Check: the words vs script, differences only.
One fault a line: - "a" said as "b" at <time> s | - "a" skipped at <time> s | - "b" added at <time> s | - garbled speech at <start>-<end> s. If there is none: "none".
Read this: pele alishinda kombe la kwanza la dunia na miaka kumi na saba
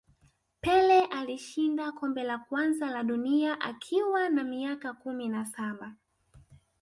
- "akiwa" added at 3.6 s